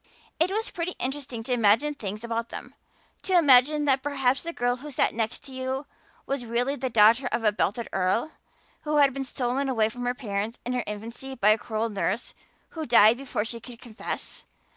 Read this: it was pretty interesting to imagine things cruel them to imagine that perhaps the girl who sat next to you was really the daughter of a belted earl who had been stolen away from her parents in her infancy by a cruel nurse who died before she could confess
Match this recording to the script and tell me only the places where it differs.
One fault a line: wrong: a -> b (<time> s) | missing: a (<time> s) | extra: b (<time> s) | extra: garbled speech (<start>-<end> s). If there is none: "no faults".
wrong: cruel -> about (2.2 s)